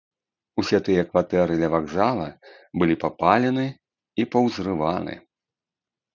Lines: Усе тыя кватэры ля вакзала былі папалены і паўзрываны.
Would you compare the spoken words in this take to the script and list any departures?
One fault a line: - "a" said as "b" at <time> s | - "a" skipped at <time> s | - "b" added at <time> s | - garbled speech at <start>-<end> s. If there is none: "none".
none